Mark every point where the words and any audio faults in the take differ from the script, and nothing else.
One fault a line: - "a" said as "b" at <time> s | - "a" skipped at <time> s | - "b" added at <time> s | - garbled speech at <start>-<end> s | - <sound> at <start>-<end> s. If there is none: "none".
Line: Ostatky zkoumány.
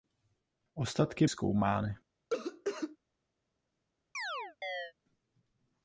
- cough at 2.3-3.0 s
- chirp at 4.1-4.9 s